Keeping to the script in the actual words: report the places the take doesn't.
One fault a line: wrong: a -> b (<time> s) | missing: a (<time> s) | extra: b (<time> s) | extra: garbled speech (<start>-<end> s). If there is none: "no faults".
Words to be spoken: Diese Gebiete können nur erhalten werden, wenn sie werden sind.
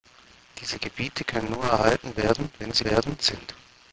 no faults